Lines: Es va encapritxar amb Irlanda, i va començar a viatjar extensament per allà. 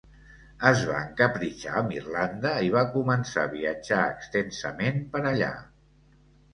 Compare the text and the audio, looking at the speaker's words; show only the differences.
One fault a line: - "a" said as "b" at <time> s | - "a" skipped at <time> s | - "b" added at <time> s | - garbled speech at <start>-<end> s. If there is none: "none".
none